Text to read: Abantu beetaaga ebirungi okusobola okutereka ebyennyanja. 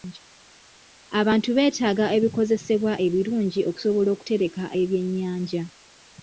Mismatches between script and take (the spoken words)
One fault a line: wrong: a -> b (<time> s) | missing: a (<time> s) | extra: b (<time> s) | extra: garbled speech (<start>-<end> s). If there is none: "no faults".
extra: ebikozesebwa (2.2 s)